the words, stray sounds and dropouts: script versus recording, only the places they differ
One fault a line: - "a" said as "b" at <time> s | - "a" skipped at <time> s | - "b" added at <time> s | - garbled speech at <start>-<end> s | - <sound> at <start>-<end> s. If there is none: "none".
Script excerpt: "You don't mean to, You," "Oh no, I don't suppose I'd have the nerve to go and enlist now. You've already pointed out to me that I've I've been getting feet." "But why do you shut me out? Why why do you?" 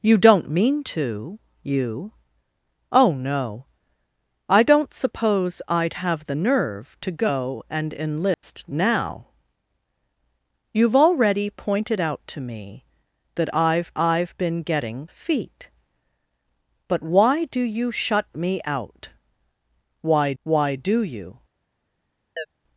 - dropout at 8.3-8.4 s
- chirp at 22.4-22.5 s